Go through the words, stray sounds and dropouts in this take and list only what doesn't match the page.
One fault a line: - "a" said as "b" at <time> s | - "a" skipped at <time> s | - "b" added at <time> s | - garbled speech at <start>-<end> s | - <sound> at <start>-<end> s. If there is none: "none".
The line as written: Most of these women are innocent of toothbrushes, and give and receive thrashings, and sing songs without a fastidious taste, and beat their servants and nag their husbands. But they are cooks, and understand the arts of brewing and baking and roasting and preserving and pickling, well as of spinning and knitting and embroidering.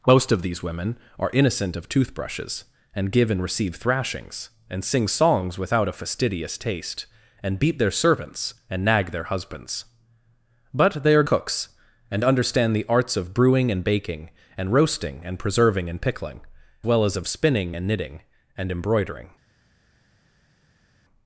none